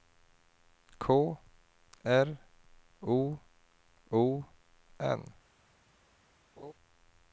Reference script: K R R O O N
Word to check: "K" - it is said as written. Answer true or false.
true